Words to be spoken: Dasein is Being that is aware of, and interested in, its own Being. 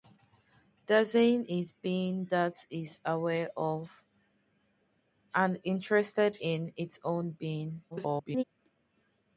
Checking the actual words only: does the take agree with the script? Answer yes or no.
no